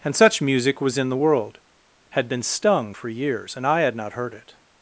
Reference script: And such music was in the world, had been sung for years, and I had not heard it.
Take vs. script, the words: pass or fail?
fail